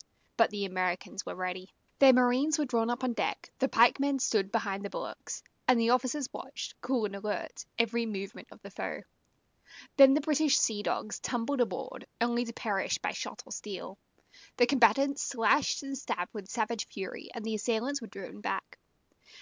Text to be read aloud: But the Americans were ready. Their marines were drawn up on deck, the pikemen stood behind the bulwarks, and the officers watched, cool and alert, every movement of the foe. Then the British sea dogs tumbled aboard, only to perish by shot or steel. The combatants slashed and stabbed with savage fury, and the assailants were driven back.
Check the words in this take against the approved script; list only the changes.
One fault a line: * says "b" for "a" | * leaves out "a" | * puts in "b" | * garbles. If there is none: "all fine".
all fine